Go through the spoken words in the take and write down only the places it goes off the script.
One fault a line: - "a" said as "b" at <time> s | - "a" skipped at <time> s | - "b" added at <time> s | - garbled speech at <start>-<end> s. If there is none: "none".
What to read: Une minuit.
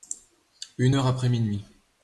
- "heure après" added at 0.9 s